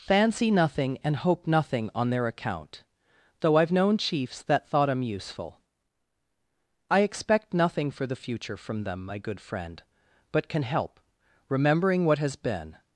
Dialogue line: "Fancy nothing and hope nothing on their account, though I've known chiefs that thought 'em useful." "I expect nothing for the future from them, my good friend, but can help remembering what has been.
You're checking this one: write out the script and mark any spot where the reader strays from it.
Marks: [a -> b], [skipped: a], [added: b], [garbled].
"Fancy nothing and hope nothing on their account, though I've known chiefs that thought 'em useful." "I expect nothing for the future from them, my good friend, but can help remembering what has been.